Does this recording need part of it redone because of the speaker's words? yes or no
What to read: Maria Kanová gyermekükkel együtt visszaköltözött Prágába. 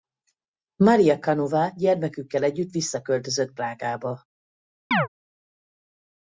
no